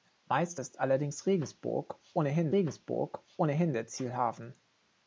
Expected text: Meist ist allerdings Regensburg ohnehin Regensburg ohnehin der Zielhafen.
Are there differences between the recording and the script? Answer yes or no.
no